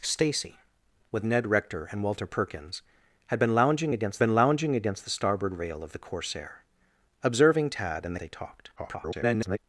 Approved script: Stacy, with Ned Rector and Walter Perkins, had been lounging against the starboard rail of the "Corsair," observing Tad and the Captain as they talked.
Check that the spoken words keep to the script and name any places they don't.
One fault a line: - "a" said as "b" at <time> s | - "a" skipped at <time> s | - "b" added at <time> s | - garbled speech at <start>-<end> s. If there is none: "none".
- "been lounging against" added at 4.2 s
- "the Captain as" skipped at 8.2 s
- garbled speech at 8.8-9.6 s